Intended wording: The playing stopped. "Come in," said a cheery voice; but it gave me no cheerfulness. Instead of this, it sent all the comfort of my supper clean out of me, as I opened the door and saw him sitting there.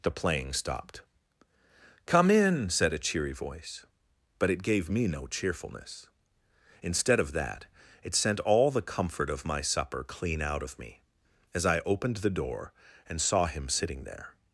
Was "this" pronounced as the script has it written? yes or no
no